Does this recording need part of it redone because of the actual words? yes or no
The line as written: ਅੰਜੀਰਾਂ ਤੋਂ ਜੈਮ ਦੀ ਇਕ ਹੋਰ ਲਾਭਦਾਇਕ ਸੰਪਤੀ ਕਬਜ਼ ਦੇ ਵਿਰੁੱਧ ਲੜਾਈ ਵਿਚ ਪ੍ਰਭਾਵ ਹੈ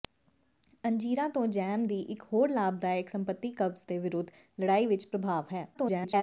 yes